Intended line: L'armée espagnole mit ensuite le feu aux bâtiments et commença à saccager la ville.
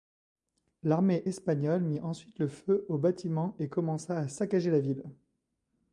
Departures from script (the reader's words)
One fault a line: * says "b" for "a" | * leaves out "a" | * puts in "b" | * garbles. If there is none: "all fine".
all fine